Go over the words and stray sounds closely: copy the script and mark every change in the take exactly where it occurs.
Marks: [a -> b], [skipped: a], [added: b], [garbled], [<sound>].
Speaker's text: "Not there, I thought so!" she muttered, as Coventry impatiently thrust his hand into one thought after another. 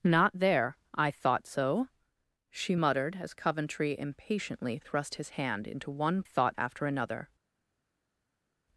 "Not there, I thought so!" she muttered, as Coventry impatiently thrust his hand into one thought after another.